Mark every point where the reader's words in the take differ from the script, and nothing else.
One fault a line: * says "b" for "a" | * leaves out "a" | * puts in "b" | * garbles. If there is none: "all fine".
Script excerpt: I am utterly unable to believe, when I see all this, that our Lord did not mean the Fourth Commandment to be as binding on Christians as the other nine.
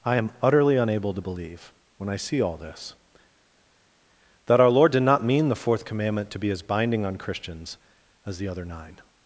all fine